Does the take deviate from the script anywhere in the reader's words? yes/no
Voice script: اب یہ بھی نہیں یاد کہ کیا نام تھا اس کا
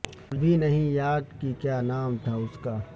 yes